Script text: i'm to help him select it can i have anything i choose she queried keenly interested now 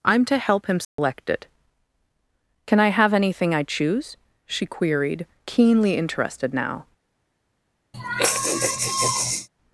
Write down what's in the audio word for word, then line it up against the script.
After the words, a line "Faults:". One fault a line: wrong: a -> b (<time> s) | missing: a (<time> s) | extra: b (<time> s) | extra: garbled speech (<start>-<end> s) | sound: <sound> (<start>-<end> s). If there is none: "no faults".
i'm to help him select it can i have anything i choose she queried keenly interested now
Faults:
sound: dropout (0.8-1.0 s)
sound: sigh (7.9-9.5 s)